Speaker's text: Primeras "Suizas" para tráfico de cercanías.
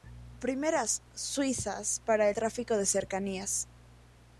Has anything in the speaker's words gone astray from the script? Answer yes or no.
no